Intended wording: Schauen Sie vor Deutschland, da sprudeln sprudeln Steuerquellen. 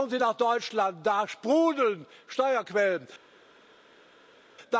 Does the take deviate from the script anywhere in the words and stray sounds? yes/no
yes